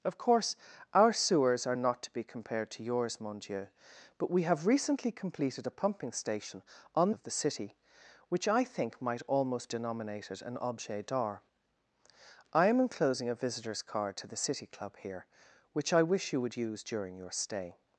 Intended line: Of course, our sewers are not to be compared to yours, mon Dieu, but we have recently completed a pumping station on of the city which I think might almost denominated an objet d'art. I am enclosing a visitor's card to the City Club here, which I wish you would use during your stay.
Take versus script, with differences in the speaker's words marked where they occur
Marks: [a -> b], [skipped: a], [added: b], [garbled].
Of course, our sewers are not to be compared to yours, mon Dieu, but we have recently completed a pumping station on of the city which I think might almost denominated an objet d'art. I am enclosing a visitor's card to the City Club here, which I wish you would use during your stay.